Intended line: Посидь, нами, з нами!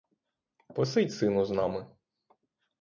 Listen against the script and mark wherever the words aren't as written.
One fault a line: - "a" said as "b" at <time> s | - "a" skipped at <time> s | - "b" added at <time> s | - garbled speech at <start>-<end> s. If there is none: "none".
- "нами" said as "сину" at 1.1 s